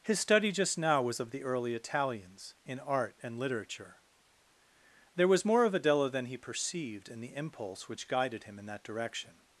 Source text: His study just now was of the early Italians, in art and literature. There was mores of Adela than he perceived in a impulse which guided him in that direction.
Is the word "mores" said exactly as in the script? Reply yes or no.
no